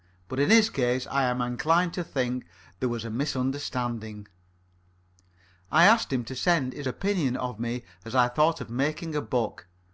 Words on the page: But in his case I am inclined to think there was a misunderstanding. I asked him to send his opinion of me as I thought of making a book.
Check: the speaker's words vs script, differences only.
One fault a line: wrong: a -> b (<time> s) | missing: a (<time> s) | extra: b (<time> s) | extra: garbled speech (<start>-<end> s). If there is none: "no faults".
no faults